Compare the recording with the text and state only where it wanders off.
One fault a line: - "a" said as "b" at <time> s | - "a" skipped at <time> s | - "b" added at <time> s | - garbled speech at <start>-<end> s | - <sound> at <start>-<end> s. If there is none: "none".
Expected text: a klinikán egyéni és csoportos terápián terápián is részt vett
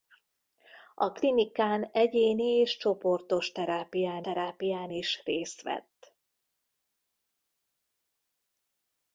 none